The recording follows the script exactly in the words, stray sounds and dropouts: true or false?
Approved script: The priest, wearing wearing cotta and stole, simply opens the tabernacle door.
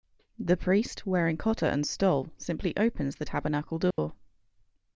false